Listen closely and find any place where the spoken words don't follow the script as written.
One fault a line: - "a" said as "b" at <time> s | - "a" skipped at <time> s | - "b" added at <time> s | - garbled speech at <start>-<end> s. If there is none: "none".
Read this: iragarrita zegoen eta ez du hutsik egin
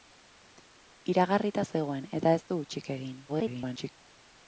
- garbled speech at 3.3-3.9 s